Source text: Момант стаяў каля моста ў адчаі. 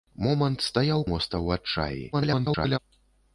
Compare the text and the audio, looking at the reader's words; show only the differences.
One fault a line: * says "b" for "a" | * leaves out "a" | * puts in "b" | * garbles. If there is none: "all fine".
* leaves out "каля"
* garbles